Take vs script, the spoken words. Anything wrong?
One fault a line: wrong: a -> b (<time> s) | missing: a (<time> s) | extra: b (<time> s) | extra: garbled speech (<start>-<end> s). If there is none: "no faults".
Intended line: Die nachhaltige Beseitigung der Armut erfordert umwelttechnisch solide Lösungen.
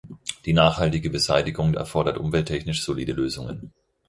missing: der Armut (1.7 s)